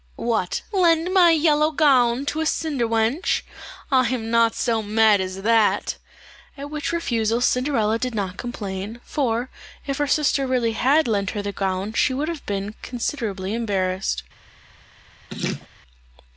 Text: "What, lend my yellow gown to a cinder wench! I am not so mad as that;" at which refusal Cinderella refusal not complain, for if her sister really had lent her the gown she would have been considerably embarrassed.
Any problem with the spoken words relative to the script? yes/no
yes